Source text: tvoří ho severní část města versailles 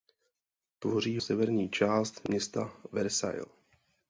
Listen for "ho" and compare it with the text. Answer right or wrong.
wrong